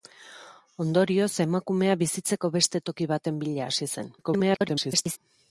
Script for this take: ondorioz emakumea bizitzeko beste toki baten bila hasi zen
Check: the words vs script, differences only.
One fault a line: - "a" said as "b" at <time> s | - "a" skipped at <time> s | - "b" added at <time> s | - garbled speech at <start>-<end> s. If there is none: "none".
- garbled speech at 4.2-5.2 s